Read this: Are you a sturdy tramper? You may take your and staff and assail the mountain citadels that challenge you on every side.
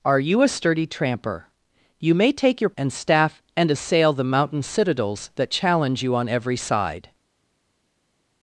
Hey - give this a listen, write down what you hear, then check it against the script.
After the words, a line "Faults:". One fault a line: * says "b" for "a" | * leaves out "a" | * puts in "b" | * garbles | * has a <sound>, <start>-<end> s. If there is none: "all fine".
Are you a sturdy tramper? You may take your and staff and assail the mountain citadels that challenge you on every side.
Faults:
all fine